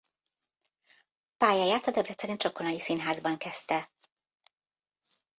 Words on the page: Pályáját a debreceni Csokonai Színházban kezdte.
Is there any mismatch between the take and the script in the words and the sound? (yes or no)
no